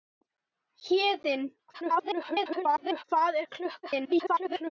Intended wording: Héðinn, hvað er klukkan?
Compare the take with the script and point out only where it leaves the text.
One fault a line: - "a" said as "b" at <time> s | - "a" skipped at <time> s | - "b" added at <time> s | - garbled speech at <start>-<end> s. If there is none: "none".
- garbled speech at 1.7-3.0 s
- garbled speech at 3.8-4.7 s